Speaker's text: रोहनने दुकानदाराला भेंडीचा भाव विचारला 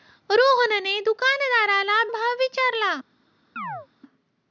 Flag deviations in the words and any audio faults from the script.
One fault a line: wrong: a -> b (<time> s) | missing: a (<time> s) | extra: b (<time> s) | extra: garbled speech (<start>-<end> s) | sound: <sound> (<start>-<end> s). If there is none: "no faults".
missing: भेंडीचा (2.0 s)
sound: chirp (3.6-3.9 s)